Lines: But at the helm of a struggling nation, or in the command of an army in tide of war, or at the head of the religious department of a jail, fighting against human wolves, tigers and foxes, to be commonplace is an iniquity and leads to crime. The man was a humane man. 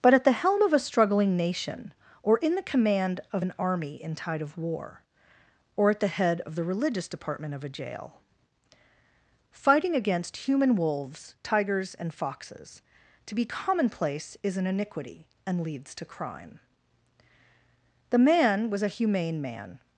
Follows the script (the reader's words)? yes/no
yes